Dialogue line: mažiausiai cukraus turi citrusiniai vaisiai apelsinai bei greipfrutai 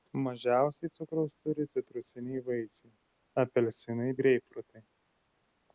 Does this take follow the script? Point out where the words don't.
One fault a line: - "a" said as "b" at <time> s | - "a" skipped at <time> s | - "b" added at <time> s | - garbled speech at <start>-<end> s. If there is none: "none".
- "bei" skipped at 4.1 s